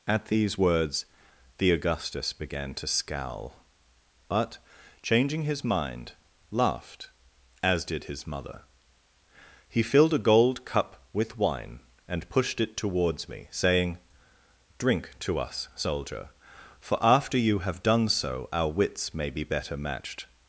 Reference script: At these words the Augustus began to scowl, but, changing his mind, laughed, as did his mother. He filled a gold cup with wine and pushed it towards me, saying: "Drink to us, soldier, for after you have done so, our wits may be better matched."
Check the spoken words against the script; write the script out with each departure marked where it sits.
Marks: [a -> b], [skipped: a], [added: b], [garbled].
At these words the Augustus began to scowl, but, changing his mind, laughed, as did his mother. He filled a gold cup with wine and pushed it towards me, saying: "Drink to us, soldier, for after you have done so, our wits may be better matched."